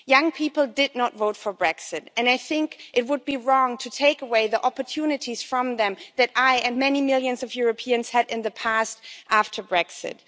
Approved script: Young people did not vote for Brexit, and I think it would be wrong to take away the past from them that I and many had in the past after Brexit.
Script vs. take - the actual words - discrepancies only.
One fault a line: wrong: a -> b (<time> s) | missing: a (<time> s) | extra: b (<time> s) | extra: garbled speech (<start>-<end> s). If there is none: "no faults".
wrong: past -> opportunities (4.7 s)
extra: millions of Europeans (7.0 s)